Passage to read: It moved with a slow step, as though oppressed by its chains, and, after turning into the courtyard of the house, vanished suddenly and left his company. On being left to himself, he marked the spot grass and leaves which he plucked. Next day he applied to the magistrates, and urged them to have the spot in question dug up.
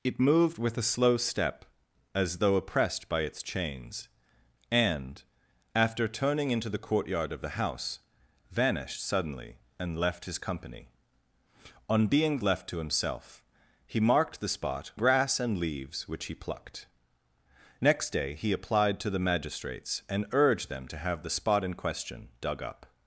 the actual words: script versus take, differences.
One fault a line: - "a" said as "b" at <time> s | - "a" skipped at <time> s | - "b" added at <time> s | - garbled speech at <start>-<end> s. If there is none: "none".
none